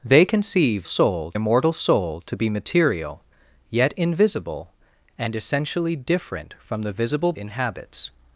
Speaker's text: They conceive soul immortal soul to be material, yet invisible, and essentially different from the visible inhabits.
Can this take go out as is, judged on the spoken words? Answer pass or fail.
pass